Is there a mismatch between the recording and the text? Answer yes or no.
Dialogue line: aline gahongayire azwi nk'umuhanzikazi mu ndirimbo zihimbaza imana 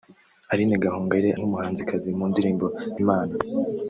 yes